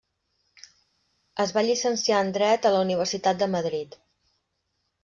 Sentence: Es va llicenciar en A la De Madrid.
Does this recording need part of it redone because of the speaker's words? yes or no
yes